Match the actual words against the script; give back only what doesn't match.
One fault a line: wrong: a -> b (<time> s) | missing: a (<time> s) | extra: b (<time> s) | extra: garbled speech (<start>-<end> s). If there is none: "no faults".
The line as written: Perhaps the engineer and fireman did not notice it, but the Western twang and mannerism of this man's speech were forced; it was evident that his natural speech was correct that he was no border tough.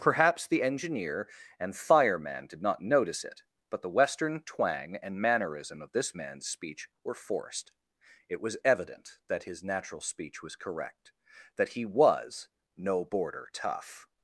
no faults